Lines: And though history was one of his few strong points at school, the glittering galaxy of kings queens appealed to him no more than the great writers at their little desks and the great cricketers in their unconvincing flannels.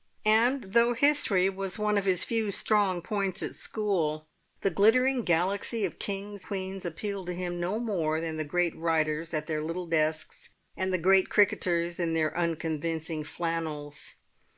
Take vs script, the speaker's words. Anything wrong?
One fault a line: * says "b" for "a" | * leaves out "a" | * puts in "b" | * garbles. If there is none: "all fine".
all fine